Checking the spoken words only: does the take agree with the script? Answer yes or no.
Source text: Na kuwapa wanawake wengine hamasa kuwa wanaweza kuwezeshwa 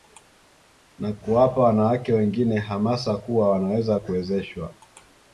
yes